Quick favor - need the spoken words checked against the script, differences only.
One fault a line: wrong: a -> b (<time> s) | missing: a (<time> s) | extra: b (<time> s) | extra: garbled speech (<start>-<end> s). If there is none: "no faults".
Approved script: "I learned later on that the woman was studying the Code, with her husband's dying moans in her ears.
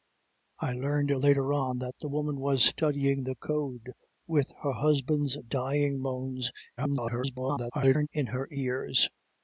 extra: garbled speech (6.8-8.1 s)